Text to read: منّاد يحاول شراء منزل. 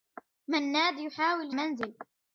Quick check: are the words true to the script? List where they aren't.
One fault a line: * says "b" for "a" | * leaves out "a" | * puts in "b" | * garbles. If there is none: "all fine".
* leaves out "شراء"